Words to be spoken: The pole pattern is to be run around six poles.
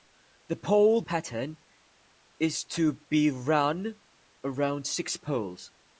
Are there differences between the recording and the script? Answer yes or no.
no